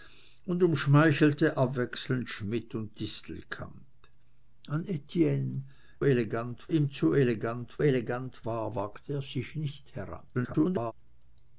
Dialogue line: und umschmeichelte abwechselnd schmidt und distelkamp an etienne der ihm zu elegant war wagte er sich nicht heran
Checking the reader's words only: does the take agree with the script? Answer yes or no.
no